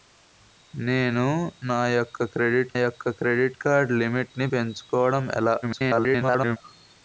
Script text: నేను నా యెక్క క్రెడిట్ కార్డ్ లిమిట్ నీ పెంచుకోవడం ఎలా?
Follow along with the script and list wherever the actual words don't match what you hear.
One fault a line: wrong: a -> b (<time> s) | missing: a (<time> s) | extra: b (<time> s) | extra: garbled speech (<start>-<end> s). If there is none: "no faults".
extra: యెక్క క్రెడిట్ (2.7 s)
extra: garbled speech (5.6-6.6 s)